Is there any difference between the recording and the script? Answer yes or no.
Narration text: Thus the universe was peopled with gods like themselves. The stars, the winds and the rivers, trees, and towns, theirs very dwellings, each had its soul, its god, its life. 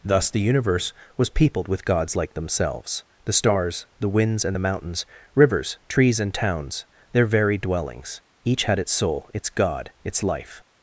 yes